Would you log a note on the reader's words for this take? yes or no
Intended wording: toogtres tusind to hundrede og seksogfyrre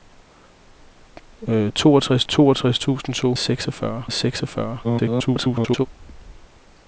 yes